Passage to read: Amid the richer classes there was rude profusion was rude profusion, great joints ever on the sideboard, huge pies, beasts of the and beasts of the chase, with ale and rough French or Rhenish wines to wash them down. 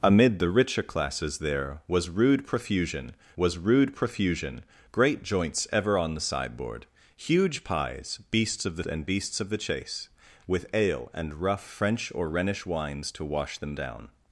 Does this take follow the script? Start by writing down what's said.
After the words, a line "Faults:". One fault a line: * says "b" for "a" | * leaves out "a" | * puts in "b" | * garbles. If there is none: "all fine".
Amid the richer classes there was rude profusion was rude profusion, great joints ever on the sideboard, huge pies, beasts of the and beasts of the chase, with ale and rough French or Rhenish wines to wash them down.
Faults:
all fine